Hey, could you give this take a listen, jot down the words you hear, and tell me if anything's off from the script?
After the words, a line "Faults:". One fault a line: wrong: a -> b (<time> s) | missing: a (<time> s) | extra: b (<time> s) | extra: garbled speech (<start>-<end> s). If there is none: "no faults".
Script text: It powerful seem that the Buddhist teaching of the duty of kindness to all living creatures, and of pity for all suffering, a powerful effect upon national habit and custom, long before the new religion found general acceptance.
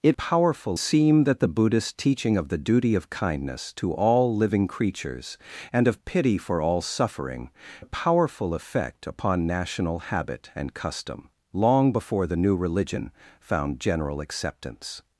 It powerful seem that the Buddhist teaching of the duty of kindness to all living creatures, and of pity for all suffering, a powerful effect upon national habit and custom, long before the new religion found general acceptance.
Faults:
no faults